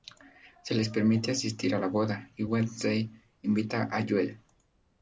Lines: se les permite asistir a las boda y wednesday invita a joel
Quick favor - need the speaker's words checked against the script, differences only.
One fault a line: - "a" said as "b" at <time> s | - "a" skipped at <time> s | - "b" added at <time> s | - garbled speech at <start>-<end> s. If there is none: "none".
- "las" said as "la" at 1.8 s